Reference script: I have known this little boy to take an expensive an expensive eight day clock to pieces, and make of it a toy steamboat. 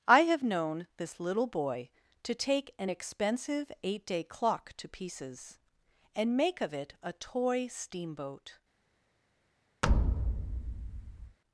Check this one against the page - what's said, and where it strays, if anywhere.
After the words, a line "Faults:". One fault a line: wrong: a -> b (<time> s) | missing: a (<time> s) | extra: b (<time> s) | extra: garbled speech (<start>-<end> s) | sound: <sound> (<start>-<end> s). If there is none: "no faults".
I have known this little boy to take an expensive eight day clock to pieces, and make of it a toy steamboat.
Faults:
missing: an expensive (3.7 s)
sound: thud (9.8-11.4 s)